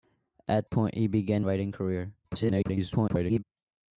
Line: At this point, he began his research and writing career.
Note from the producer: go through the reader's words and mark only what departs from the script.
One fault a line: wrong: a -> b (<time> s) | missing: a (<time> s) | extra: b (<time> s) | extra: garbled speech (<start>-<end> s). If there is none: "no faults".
missing: this (0.7 s)
missing: his research and (1.4 s)
extra: garbled speech (2.2-3.4 s)